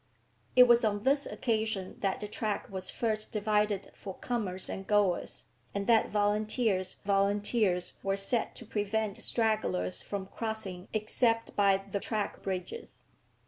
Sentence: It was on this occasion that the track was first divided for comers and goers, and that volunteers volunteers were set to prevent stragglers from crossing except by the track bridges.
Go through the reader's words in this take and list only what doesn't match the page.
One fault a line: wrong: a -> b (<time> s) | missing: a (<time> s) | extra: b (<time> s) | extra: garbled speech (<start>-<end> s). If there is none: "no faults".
no faults